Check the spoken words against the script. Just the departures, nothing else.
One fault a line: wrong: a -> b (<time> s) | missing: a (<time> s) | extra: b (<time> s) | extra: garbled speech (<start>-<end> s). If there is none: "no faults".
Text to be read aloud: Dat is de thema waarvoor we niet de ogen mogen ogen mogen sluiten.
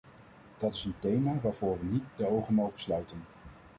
wrong: de -> een (0.8 s)
missing: ogen mogen (2.8 s)